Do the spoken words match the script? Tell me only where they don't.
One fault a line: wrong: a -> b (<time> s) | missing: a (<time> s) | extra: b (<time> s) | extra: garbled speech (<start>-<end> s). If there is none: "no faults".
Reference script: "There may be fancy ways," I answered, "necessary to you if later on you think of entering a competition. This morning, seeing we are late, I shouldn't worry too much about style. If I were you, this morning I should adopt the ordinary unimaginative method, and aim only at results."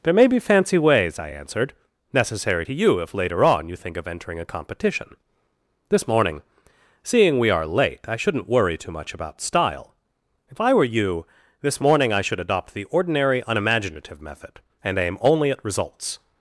no faults